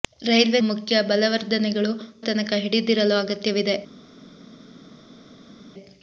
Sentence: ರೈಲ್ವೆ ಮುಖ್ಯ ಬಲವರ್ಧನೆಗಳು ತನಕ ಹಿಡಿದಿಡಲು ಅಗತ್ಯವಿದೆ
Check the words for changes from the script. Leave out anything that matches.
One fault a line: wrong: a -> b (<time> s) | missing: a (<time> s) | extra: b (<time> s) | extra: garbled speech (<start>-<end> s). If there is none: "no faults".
no faults